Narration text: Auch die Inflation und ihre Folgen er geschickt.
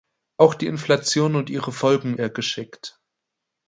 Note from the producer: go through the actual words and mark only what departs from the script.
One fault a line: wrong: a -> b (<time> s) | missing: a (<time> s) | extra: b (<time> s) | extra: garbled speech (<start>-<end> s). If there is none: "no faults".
no faults